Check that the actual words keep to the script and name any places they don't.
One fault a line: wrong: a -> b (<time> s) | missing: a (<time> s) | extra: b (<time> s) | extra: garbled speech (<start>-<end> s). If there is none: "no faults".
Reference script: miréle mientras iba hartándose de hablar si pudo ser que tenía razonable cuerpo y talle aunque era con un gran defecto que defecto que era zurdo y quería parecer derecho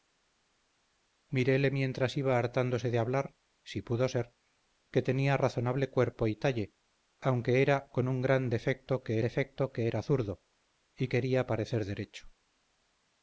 no faults